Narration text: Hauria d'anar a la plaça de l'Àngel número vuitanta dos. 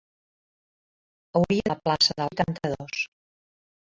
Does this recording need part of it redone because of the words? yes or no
yes